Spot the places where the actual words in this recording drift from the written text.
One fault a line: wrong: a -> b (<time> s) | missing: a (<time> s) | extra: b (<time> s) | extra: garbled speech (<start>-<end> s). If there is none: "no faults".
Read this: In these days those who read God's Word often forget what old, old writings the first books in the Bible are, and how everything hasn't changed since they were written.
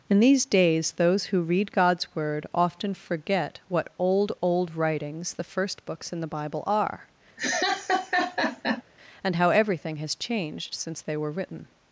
wrong: hasn't -> has (10.0 s)